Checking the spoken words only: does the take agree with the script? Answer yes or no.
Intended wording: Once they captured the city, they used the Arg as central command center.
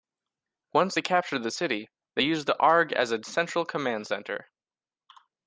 no